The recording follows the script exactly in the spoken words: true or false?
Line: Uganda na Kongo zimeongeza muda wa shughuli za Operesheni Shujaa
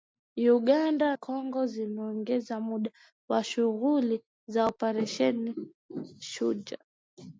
false